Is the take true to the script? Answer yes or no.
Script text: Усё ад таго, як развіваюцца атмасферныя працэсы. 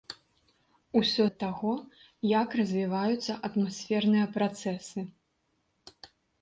yes